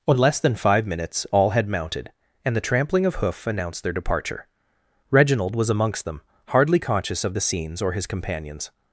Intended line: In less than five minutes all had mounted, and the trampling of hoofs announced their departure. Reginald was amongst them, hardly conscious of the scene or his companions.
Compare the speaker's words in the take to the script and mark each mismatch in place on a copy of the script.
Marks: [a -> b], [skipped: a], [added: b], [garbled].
In less than five minutes all had mounted, and the trampling of [hoofs -> hoof] announced their departure. Reginald was amongst them, hardly conscious of the [scene -> scenes] or his companions.